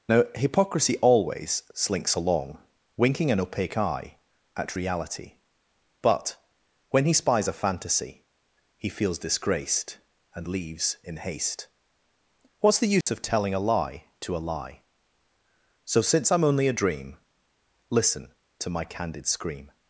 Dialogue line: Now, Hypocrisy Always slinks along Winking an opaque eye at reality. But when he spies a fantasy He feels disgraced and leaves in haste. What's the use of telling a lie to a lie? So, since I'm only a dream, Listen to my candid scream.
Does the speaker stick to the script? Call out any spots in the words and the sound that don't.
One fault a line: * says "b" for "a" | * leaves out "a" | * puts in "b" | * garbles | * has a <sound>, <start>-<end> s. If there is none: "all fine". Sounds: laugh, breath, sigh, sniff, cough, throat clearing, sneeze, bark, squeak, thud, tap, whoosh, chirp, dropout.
* has a dropout, 13.0-13.1 s